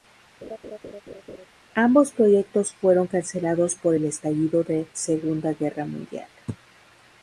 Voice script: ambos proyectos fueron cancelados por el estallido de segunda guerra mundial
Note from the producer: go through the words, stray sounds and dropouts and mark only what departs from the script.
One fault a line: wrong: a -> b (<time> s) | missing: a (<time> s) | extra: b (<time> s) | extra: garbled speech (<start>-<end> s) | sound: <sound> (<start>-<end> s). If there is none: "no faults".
sound: laugh (0.4-1.5 s)